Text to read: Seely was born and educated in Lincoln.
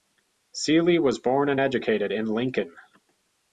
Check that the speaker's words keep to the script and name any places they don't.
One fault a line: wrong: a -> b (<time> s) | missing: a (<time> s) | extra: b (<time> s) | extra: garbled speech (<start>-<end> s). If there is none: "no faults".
no faults